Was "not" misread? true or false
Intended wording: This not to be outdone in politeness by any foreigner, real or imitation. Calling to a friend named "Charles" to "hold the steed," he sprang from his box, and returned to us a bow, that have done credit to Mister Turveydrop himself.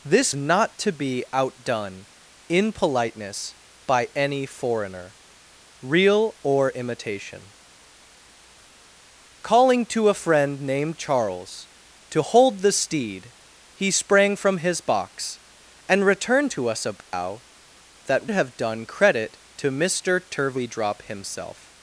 false